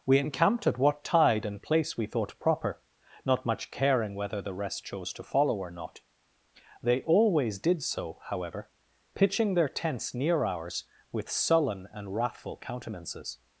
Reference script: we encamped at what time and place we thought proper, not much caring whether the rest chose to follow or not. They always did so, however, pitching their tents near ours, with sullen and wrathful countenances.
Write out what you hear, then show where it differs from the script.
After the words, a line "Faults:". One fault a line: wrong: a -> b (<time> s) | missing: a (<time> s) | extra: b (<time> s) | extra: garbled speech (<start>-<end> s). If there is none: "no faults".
we encamped at what tide and place we thought proper, not much caring whether the rest chose to follow or not. They always did so, however, pitching their tents near ours, with sullen and wrathful countenances.
Faults:
wrong: time -> tide (1.0 s)